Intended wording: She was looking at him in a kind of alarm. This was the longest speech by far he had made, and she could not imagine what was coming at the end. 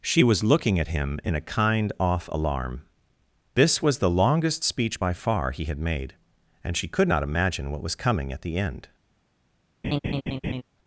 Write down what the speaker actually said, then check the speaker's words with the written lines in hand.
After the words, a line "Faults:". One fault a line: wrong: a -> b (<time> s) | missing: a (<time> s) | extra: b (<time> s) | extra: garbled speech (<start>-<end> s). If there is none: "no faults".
She was looking at him in a kind off alarm. This was the longest speech by far he had made, and she could not imagine what was coming at the end.
Faults:
wrong: of -> off (2.0 s)